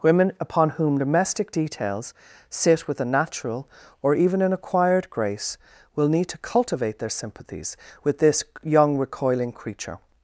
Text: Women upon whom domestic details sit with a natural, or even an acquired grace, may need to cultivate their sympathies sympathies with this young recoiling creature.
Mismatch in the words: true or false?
true